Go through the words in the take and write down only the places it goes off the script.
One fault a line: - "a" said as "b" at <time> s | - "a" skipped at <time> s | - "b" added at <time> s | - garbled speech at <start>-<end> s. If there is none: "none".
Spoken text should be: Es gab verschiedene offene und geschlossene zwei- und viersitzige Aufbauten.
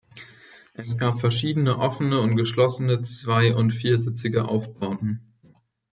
none